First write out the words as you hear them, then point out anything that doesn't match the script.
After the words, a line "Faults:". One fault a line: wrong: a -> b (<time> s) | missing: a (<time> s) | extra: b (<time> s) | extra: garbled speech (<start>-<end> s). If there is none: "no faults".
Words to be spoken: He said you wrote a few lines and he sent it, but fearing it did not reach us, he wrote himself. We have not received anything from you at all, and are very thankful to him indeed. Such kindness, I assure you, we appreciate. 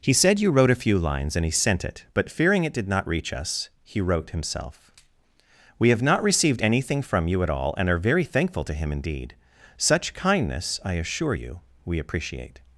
He said you wrote a few lines and he sent it, but fearing it did not reach us, he wrote himself. We have not received anything from you at all, and are very thankful to him indeed. Such kindness, I assure you, we appreciate.
Faults:
no faults